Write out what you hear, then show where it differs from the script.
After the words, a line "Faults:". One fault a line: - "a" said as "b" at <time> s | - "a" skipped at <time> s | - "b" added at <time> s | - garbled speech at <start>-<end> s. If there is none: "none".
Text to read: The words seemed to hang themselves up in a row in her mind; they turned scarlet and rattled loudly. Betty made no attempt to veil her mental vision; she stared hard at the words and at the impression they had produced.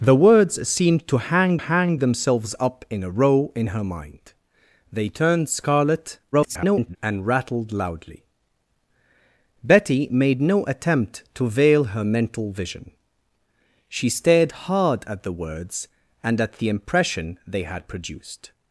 The words seemed to hang hang themselves up in a row in her mind; they turned scarlet [garbled] and rattled loudly. Betty made no attempt to veil her mental vision; she stared hard at the words and at the impression they had produced.
Faults:
- "hang" added at 1.6 s
- garbled speech at 6.3-7.0 s